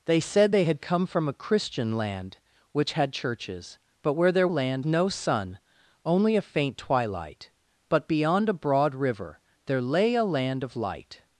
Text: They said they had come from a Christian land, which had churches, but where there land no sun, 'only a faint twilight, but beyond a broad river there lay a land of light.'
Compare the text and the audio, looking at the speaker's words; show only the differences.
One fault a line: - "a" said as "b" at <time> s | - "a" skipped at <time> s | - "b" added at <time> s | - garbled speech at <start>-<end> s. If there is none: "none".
none